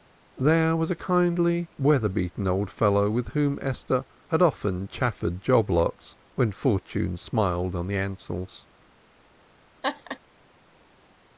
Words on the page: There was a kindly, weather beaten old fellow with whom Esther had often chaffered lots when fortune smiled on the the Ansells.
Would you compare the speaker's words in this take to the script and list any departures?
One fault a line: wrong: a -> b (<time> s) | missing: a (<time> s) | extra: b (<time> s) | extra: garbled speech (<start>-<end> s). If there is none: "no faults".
extra: job (5.4 s)
missing: the (8.0 s)